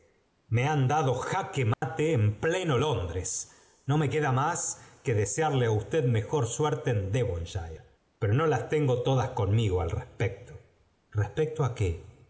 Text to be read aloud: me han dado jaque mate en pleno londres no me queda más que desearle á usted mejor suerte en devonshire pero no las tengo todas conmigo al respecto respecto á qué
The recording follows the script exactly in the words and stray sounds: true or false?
false